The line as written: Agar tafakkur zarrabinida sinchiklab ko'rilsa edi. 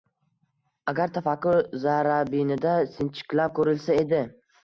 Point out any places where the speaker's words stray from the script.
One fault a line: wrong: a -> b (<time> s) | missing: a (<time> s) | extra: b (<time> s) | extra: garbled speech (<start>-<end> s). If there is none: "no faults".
no faults